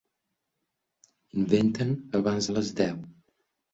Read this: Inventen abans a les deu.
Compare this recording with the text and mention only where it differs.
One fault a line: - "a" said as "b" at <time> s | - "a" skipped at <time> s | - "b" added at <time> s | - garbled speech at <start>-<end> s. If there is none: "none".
none